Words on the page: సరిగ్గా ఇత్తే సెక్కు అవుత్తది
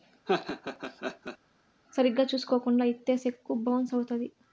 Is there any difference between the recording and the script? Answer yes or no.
yes